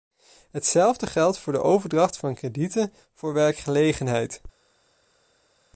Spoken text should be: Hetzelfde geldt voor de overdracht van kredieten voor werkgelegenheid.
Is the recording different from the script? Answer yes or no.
no